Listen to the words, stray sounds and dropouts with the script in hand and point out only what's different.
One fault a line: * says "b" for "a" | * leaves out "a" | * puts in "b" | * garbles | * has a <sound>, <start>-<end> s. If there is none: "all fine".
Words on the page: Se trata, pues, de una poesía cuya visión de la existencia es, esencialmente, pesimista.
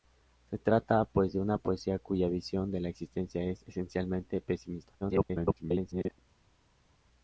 * garbles